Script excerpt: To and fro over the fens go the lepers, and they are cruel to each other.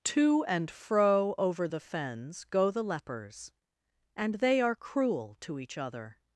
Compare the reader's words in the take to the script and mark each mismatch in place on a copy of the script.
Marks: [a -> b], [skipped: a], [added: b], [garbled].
To and fro over the fens go the lepers, and they are cruel to each other.